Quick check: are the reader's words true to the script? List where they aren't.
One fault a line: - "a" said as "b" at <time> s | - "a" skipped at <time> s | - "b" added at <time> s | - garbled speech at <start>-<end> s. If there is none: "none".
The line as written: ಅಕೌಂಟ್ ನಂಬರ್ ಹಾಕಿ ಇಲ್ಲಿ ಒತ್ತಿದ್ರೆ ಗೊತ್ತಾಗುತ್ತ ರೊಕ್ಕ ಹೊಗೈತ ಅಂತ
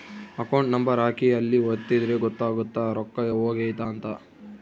- "ಇಲ್ಲಿ" said as "ಅಲ್ಲಿ" at 1.3 s